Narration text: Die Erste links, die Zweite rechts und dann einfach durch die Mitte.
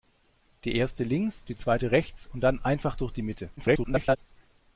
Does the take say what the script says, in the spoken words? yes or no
no